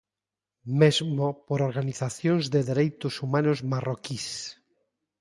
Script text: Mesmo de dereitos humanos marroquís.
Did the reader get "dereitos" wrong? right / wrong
right